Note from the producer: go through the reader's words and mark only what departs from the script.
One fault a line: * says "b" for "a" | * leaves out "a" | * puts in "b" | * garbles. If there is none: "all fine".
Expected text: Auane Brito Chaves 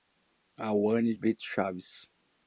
all fine